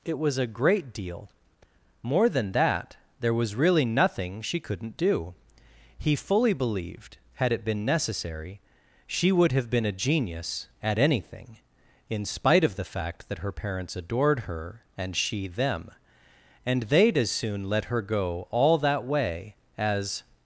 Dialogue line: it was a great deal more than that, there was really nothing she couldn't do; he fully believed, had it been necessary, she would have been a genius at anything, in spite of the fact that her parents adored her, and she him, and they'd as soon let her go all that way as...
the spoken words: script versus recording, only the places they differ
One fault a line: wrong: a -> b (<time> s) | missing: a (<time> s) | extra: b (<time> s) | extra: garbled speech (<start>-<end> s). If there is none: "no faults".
wrong: him -> them (15.5 s)